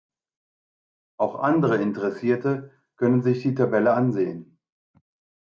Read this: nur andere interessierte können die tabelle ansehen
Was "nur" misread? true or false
true